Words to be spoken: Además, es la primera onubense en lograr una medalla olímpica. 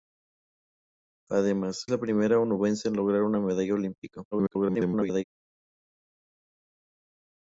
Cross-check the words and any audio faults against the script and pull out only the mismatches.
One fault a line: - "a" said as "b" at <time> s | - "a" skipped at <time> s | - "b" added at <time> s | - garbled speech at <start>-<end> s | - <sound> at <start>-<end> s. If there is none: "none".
- "es" skipped at 1.9 s
- garbled speech at 4.3-5.2 s